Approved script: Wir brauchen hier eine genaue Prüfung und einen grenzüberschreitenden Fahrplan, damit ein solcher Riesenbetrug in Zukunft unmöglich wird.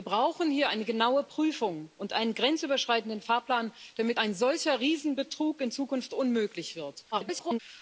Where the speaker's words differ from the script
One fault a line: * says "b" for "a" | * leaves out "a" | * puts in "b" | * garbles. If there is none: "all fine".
* garbles